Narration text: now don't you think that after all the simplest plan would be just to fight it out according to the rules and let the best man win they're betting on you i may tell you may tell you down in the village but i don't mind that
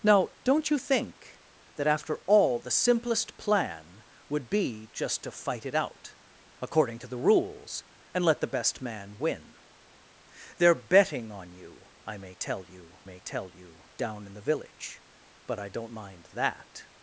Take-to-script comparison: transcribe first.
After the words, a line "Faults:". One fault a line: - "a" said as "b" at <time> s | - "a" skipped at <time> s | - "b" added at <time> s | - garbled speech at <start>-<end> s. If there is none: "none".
now don't you think that after all the simplest plan would be just to fight it out according to the rules and let the best man win they're betting on you i may tell you may tell you down in the village but i don't mind that
Faults:
none